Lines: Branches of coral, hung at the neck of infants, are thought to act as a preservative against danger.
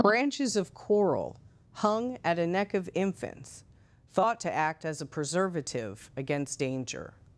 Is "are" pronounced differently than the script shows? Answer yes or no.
yes